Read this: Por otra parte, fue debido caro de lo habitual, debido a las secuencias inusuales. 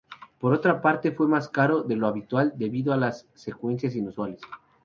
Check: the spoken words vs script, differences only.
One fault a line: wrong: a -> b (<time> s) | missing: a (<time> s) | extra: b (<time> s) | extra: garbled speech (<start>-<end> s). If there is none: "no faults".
wrong: debido -> más (1.3 s)